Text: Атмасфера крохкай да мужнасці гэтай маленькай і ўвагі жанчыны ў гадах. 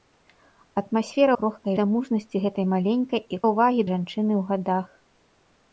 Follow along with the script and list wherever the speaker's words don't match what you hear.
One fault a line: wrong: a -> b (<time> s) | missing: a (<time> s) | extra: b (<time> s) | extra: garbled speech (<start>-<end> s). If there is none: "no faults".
no faults